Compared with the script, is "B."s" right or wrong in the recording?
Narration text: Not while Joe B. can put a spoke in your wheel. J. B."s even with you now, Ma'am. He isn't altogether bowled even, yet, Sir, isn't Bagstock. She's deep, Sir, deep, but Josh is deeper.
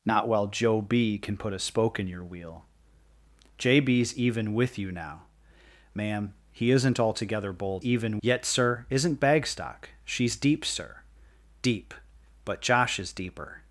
right